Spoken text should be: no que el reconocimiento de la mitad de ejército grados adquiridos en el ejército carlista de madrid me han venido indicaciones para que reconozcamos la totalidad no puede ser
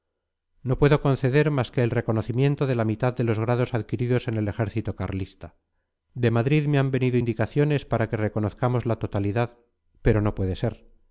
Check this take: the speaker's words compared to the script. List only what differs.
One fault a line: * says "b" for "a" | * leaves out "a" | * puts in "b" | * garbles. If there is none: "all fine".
* puts in "puedo conceder más"
* says "los" for "ejército"
* puts in "pero"